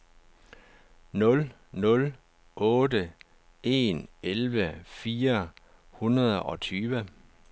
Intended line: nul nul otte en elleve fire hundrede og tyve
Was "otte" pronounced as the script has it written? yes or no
yes